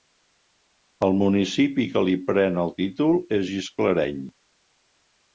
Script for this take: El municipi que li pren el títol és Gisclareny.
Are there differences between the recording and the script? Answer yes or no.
no